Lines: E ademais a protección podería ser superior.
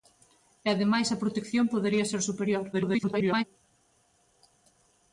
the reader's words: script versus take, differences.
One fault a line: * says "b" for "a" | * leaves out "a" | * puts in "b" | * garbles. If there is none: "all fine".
* garbles